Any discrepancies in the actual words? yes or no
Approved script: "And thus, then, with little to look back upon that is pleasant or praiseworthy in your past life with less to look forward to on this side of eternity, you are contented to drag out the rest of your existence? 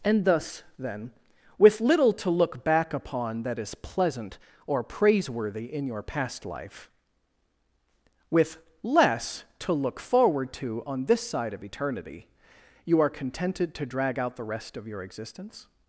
no